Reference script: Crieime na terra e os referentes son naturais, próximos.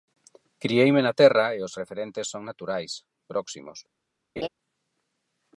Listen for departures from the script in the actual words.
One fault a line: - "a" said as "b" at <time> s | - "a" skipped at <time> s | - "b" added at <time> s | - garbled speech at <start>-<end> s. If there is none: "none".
none